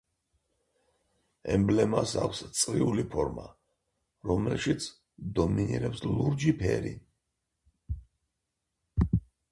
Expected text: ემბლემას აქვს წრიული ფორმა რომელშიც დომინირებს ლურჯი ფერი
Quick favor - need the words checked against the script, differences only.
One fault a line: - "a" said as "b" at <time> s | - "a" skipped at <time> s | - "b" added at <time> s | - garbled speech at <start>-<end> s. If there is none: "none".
none